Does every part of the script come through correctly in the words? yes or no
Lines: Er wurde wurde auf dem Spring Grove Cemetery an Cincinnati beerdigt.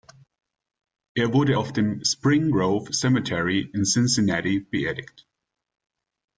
no